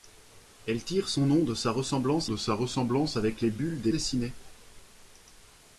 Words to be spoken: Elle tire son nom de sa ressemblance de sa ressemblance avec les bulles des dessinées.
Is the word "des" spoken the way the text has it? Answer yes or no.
yes